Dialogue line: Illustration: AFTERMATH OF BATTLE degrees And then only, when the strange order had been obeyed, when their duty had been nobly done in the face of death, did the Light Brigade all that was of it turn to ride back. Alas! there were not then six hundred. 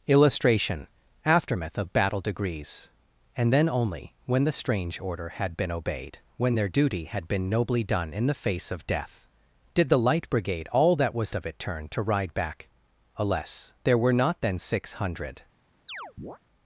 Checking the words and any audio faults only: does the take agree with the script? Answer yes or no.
no